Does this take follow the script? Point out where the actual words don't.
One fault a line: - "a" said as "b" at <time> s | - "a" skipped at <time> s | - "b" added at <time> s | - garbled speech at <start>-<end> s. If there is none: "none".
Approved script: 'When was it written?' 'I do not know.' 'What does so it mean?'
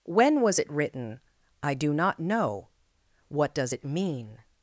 - "so" skipped at 3.7 s